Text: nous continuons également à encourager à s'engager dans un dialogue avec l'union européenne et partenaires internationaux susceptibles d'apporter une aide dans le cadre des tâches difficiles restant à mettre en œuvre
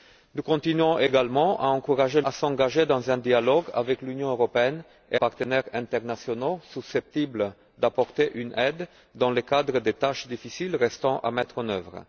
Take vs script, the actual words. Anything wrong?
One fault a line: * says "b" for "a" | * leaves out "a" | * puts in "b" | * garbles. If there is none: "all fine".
all fine